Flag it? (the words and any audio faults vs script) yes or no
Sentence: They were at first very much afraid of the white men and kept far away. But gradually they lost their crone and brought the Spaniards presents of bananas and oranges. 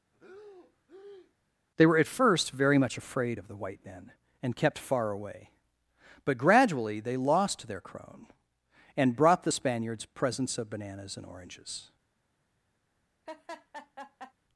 yes